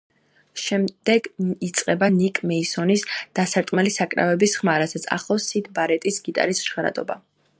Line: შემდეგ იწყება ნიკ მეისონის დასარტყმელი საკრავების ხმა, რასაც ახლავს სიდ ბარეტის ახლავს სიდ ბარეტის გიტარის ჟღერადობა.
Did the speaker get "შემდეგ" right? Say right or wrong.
right